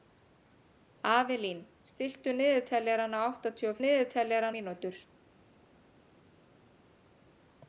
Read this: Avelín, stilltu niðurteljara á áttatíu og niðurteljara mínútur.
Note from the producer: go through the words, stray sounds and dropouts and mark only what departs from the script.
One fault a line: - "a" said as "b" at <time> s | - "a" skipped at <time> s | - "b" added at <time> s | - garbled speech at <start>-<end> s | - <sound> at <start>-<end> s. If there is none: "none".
none